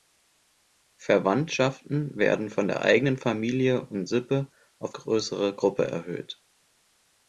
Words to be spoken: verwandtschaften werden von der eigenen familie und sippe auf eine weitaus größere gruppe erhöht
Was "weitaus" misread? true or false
true